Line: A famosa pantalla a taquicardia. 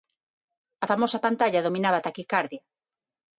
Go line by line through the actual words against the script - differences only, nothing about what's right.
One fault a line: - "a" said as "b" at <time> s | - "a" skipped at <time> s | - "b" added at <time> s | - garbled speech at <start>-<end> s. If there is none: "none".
- "dominaba" added at 1.7 s